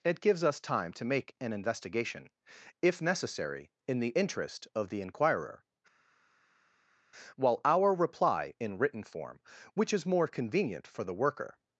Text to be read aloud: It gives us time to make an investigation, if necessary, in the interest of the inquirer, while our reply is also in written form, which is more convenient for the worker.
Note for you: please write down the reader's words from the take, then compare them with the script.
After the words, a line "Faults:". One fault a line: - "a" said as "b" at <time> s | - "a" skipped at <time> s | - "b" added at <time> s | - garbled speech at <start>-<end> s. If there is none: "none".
It gives us time to make an investigation, if necessary, in the interest of the inquirer, while our reply in written form, which is more convenient for the worker.
Faults:
- "is also" skipped at 8.5 s